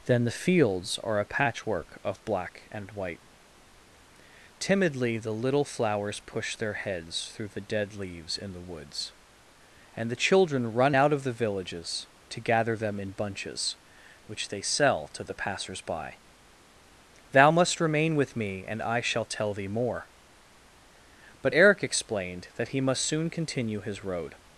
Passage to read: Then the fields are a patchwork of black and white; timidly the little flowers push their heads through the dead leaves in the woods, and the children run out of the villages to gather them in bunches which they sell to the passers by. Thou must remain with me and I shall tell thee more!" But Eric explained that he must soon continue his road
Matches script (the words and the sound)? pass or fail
pass